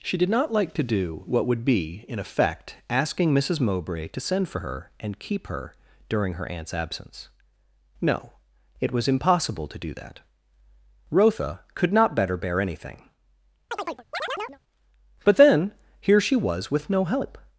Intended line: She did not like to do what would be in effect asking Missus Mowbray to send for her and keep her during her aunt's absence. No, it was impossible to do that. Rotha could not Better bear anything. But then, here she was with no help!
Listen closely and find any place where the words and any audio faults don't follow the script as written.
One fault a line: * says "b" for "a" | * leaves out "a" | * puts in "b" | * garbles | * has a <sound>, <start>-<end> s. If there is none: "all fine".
* has a chirp, 13.7-14.6 s